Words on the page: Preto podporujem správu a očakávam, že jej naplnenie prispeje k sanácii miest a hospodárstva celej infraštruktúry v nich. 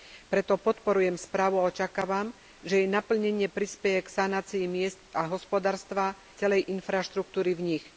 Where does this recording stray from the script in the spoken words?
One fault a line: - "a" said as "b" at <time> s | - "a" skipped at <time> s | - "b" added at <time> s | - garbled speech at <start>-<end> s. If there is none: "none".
none